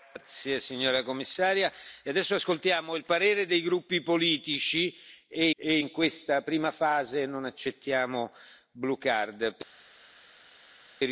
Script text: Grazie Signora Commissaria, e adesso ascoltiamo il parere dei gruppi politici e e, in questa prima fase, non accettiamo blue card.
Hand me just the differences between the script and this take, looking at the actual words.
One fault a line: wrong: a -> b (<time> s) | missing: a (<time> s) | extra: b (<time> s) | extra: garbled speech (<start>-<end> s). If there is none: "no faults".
no faults